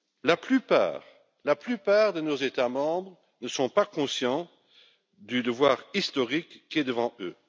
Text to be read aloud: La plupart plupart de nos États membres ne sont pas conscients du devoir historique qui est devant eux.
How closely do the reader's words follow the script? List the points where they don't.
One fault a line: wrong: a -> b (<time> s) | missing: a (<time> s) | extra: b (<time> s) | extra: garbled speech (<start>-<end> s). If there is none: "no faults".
missing: plupart (1.0 s)